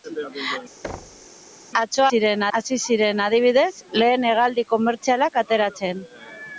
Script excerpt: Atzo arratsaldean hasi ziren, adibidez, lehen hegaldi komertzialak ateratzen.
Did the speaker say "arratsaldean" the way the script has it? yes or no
no